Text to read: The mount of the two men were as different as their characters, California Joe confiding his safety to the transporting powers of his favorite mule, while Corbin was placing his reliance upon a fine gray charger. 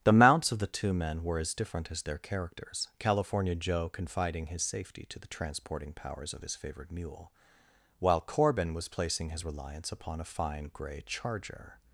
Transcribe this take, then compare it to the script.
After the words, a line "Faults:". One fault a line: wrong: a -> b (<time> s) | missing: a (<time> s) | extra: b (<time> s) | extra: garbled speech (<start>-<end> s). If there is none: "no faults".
The mounts of the two men were as different as their characters, California Joe confiding his safety to the transporting powers of his favorite mule, while Corbin was placing his reliance upon a fine gray charger.
Faults:
wrong: mount -> mounts (0.1 s)